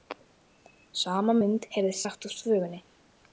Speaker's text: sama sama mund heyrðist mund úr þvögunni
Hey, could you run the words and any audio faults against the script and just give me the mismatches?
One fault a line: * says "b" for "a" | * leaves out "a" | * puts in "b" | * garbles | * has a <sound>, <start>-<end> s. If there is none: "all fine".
* leaves out "sama"
* says "sagt" for "mund"